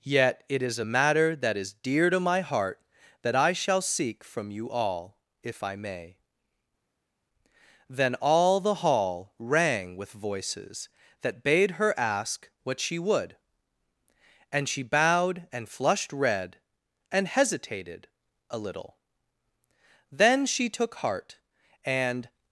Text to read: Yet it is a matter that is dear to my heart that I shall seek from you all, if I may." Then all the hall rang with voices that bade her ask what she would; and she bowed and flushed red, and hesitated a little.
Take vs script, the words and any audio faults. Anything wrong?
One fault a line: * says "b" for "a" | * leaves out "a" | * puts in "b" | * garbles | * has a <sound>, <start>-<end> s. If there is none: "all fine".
* puts in "Then she took heart and"